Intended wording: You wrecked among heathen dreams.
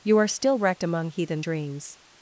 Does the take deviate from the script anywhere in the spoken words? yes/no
yes